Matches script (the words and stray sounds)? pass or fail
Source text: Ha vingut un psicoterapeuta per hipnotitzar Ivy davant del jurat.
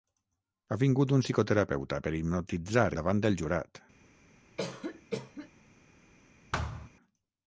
fail